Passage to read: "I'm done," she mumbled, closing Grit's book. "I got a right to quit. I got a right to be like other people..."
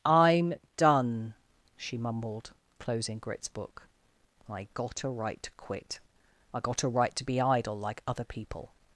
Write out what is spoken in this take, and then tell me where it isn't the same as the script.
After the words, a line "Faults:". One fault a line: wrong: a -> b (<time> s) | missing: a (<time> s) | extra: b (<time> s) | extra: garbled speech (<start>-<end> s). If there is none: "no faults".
"I'm done," she mumbled, closing Grit's book. "I got a right to quit. I got a right to be idle like other people..."
Faults:
extra: idle (7.4 s)